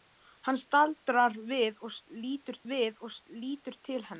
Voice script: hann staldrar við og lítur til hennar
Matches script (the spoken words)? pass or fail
fail